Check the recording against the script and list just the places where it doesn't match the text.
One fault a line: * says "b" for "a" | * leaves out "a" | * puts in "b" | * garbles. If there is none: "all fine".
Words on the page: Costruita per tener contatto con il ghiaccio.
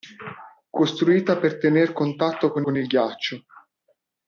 * puts in "con"